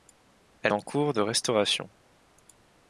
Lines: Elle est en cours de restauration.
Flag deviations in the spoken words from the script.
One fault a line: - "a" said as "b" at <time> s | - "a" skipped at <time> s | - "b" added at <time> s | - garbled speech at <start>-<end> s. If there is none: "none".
- "est" skipped at 0.7 s